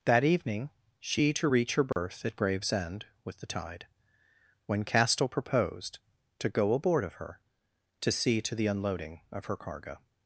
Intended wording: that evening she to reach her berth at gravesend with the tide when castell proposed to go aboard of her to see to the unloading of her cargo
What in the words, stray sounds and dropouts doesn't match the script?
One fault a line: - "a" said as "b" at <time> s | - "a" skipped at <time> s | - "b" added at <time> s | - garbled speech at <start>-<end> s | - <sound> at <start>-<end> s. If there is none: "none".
- dropout at 1.9-2.0 s